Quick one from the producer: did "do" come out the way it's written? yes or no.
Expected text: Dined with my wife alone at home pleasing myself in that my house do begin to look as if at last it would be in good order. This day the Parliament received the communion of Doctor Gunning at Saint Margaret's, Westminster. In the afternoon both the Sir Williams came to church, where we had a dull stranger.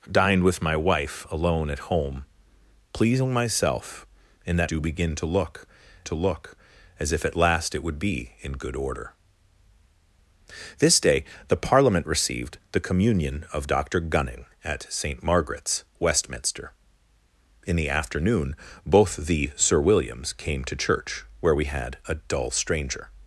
no